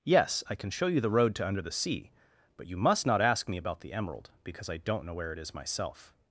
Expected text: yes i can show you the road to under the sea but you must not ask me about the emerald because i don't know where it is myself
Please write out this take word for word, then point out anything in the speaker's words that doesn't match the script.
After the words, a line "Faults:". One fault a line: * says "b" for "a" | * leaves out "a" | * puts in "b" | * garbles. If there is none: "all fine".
yes i can show you the road to under the sea but you must not ask me about the emerald because i don't know where it is myself
Faults:
all fine